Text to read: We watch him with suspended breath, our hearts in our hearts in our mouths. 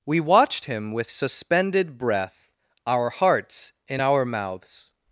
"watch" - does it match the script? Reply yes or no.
no